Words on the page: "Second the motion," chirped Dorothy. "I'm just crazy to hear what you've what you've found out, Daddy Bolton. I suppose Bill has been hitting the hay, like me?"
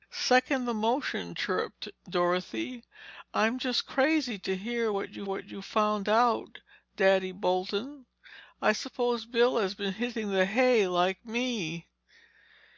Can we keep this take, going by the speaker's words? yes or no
yes